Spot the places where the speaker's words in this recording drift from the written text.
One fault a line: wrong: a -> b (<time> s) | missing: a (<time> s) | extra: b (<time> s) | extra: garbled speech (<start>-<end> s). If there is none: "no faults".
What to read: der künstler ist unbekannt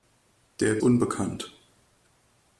missing: künstler ist (0.8 s)